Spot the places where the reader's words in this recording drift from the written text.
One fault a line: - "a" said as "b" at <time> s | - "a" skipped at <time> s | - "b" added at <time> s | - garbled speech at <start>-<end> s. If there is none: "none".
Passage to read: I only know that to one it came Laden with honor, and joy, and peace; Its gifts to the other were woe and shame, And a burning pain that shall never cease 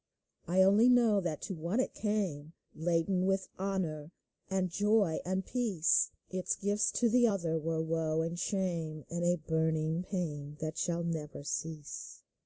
none